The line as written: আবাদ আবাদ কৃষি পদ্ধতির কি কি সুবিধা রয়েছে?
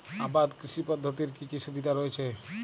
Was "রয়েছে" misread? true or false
false